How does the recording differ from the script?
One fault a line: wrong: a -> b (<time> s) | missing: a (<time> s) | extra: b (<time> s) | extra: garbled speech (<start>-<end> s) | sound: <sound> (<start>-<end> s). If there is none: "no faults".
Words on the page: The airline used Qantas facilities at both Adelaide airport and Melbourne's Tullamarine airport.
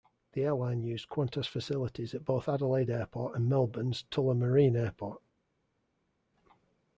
no faults